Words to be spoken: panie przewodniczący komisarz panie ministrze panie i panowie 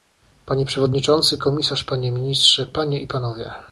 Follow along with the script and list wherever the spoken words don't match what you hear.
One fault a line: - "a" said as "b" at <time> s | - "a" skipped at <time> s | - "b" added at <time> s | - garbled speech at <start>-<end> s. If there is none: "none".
none